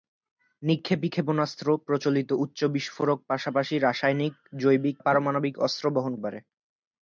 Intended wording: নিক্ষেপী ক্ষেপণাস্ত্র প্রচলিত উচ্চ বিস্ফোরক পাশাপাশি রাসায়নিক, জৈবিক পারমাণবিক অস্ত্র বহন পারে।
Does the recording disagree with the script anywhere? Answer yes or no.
no